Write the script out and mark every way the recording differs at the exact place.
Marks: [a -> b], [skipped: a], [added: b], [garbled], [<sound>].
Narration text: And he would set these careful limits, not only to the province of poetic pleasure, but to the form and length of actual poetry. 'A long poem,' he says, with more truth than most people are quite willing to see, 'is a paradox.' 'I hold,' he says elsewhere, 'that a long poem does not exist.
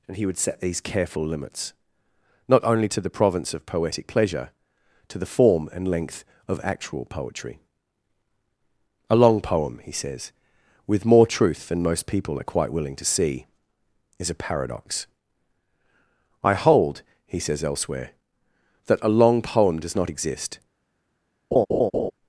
And he would set these careful limits, not only to the province of poetic pleasure, [skipped: but] to the form and length of actual poetry. 'A long poem,' he says, with more truth than most people are quite willing to see, 'is a paradox.' 'I hold,' he says elsewhere, 'that a long poem does not exist. [laugh]